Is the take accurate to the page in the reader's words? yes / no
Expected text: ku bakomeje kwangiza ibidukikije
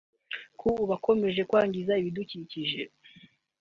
yes